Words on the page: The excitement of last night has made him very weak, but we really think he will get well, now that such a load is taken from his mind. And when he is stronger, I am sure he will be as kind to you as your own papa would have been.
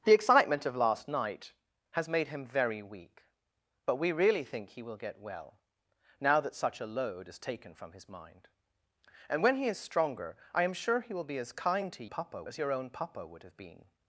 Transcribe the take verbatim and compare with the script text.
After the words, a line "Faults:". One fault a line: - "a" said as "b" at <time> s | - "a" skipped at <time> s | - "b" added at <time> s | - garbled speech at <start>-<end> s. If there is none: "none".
The excitement of last night has made him very weak, but we really think he will get well, now that such a load is taken from his mind. And when he is stronger, I am sure he will be as kind to papa as your own papa would have been.
Faults:
- "you" said as "papa" at 12.1 s